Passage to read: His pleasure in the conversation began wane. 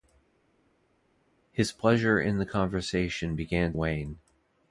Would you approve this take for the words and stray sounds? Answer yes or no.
yes